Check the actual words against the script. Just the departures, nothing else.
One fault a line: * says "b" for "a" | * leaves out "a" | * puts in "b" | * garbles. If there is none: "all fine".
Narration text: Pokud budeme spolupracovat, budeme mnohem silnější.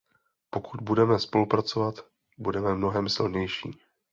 all fine